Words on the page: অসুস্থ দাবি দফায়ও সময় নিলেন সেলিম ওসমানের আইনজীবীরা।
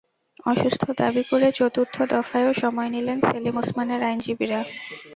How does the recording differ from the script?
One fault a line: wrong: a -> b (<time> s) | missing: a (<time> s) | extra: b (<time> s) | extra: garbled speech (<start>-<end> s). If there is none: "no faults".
extra: করে চতুর্থ (1.2 s)